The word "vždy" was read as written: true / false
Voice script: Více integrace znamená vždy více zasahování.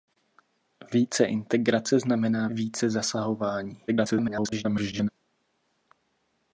false